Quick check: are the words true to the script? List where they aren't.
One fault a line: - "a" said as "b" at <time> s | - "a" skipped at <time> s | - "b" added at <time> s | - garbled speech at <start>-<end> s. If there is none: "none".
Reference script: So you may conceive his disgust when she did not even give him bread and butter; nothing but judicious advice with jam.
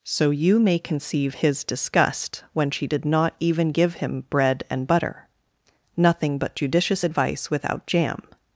- "with" said as "without" at 7.5 s